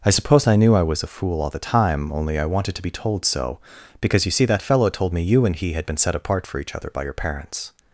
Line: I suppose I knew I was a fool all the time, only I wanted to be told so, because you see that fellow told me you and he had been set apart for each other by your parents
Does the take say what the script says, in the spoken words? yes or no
yes